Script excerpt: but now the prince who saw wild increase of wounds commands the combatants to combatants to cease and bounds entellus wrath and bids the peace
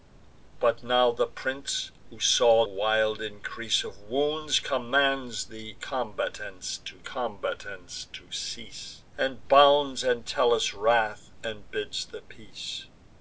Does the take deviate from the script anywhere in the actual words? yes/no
no